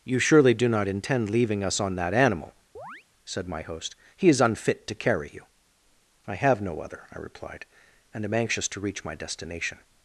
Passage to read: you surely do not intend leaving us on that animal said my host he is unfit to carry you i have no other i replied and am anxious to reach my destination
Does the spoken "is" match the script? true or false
true